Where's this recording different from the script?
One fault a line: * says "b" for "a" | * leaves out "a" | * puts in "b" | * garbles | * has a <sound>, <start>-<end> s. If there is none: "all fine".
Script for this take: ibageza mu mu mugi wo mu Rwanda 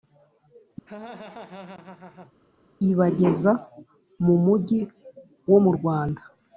* has a laugh, 0.9-2.3 s
* leaves out "mu"